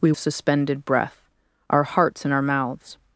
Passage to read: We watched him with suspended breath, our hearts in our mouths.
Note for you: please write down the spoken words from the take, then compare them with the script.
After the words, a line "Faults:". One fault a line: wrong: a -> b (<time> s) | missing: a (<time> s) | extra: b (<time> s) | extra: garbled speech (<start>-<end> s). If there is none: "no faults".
We suspended breath, our hearts in our mouths.
Faults:
missing: watched him with (0.1 s)